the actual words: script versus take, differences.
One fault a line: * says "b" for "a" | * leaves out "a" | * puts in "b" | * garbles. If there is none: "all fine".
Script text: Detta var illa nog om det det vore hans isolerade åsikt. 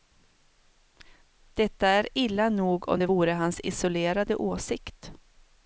* says "är" for "var"
* leaves out "det"